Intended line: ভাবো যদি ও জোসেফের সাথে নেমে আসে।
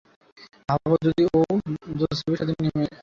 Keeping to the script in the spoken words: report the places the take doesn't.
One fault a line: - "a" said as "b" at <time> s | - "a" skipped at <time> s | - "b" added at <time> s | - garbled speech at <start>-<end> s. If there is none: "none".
none